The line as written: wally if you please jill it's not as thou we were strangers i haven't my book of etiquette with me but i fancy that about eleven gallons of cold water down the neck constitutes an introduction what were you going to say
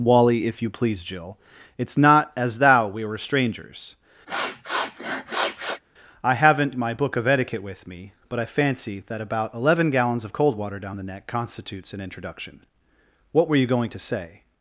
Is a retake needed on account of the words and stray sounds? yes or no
yes